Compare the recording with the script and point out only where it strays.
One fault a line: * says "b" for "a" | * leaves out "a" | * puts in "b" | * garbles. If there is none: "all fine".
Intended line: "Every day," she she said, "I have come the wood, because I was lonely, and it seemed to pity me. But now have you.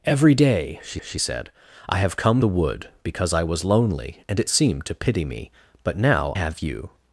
all fine